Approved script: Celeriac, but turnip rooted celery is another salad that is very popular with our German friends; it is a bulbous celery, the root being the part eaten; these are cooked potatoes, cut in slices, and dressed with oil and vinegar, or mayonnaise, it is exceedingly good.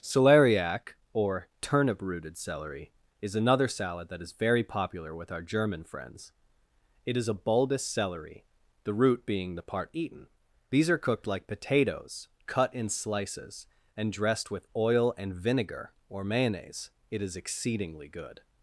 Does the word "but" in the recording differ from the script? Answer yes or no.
yes